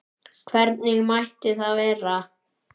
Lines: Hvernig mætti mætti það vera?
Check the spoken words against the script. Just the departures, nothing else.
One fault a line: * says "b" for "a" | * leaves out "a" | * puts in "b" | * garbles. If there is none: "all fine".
* leaves out "mætti"